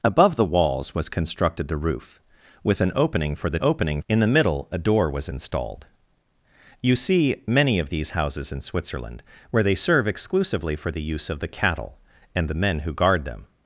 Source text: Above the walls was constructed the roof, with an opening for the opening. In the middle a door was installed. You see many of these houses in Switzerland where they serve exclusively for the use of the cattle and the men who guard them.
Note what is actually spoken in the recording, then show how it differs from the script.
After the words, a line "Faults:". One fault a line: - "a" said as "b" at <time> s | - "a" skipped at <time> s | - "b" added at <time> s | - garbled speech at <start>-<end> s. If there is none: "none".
Above the walls was constructed the roof, with an opening for the opening. In the middle a door was installed. You see many of these houses in Switzerland where they serve exclusively for the use of the cattle and the men who guard them.
Faults:
none